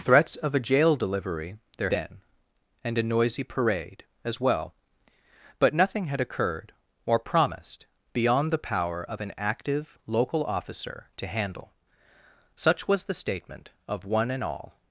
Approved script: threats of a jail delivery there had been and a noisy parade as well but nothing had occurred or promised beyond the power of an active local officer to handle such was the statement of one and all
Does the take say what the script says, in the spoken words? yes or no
no